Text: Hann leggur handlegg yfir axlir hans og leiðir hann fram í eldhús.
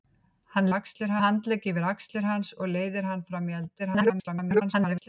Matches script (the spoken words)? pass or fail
fail